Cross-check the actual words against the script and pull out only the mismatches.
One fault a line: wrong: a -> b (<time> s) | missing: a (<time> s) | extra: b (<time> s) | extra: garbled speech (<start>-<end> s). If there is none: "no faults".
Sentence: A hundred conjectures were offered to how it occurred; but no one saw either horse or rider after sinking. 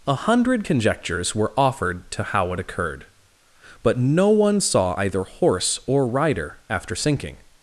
no faults